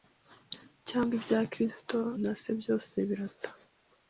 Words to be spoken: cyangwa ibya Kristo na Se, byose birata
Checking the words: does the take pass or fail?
pass